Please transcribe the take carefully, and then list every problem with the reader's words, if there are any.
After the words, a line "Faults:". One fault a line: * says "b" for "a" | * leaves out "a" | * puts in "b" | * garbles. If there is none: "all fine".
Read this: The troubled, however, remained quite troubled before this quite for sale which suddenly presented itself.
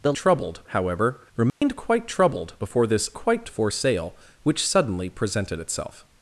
The troubled, however, remained quite troubled before this quite for sale which suddenly presented itself.
Faults:
all fine